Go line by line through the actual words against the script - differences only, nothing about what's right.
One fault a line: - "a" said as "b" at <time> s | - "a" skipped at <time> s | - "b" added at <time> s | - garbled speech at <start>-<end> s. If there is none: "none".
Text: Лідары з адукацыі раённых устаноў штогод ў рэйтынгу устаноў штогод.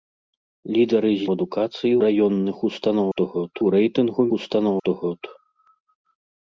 none